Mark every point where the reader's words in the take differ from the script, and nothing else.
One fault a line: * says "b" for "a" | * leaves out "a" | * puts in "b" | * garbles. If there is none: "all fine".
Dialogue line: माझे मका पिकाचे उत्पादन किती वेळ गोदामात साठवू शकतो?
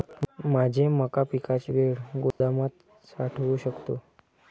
* leaves out "उत्पादन किती"